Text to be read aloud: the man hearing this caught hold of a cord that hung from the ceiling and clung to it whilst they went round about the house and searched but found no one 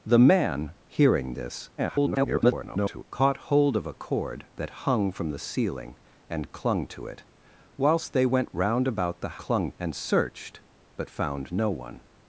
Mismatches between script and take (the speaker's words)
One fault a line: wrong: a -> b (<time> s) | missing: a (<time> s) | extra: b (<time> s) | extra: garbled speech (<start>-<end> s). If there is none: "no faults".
extra: garbled speech (1.8-3.0 s)
wrong: house -> clung (9.4 s)